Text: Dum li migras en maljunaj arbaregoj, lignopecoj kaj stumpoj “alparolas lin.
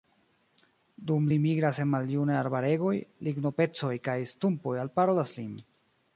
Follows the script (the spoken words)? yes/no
yes